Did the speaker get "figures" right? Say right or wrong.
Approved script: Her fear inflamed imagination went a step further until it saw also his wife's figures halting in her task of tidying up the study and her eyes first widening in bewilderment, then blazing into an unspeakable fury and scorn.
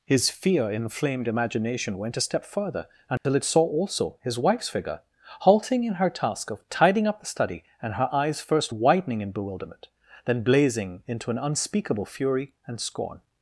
wrong